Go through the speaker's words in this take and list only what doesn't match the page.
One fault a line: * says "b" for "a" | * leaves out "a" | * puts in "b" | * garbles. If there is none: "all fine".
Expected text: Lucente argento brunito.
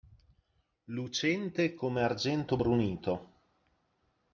* puts in "come"